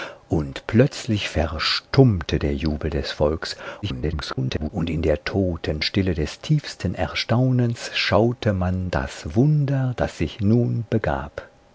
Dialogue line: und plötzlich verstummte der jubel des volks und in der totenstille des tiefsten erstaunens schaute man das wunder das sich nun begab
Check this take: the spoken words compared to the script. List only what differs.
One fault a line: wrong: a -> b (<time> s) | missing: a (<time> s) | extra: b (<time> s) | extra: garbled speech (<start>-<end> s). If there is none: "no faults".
extra: garbled speech (3.8-4.7 s)